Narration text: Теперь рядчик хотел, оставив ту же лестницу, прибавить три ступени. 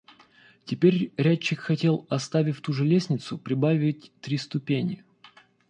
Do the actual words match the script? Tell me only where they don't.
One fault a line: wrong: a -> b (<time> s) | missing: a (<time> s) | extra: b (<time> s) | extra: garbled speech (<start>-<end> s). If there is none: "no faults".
no faults